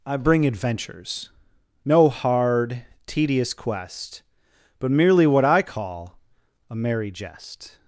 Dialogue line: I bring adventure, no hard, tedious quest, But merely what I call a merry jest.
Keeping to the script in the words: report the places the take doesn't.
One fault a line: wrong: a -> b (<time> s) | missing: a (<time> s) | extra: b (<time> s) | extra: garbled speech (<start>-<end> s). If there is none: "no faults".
wrong: adventure -> adventures (0.5 s)